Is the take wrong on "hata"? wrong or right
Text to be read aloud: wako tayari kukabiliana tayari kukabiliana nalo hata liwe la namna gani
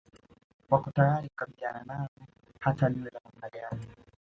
right